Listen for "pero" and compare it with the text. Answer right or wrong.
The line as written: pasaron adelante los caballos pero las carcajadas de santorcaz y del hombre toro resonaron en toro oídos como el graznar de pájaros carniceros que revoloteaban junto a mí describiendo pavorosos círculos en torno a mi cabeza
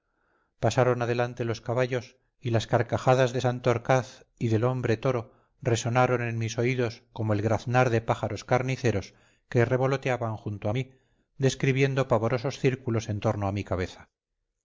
wrong